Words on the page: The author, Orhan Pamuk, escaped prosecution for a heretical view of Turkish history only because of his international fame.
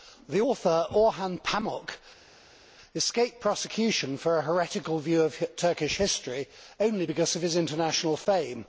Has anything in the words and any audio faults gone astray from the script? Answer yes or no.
no